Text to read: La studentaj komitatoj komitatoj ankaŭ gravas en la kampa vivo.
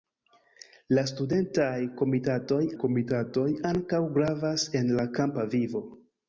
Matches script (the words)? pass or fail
pass